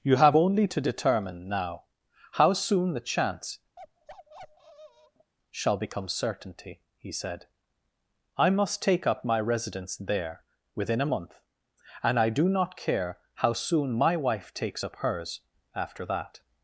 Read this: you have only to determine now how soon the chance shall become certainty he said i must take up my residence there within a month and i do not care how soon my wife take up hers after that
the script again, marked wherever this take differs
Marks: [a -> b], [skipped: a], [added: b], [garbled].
you have only to determine now how soon the chance shall become certainty he said i must take up my residence there within a month and i do not care how soon my wife [take -> takes] up hers after that